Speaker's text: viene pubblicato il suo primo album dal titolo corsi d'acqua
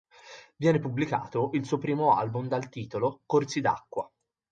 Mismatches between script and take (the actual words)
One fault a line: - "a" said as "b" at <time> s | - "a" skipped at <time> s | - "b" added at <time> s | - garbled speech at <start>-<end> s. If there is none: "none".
none